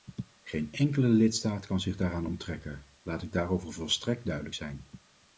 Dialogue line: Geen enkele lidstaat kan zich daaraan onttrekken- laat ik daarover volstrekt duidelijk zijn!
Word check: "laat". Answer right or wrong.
right